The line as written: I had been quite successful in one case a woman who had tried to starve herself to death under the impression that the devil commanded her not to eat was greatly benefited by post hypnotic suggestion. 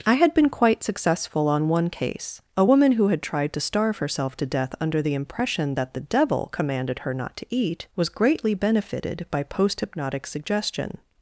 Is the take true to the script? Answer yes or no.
no